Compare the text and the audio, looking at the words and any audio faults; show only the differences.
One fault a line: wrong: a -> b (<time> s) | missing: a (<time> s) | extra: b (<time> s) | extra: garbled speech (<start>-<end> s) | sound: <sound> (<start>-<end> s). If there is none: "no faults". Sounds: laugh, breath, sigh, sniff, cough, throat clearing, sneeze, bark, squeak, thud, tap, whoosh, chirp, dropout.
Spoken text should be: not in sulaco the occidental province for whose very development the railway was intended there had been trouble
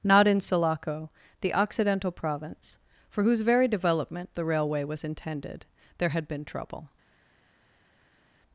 no faults